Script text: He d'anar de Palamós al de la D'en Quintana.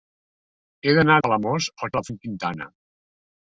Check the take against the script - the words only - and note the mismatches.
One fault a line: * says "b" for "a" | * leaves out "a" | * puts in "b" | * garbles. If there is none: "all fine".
all fine